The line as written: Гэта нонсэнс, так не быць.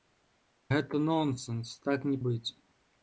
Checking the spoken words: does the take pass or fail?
pass